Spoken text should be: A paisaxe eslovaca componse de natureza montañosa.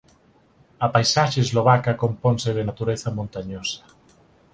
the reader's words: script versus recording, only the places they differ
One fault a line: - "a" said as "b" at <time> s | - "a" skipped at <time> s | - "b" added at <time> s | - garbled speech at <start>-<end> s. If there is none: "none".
none